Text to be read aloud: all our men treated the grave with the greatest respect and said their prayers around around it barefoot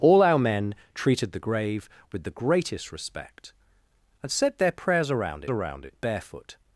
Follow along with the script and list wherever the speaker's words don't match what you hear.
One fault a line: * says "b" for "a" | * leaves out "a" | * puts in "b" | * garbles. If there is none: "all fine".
all fine